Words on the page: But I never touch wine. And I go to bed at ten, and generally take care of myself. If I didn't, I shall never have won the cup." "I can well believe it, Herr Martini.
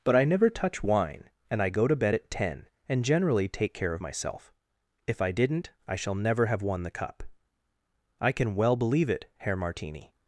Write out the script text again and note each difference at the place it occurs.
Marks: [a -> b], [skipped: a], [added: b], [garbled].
But I never touch wine. And I go to bed at ten, and generally take care of myself. If I didn't, I shall never have won the cup." "I can well believe it, Herr Martini.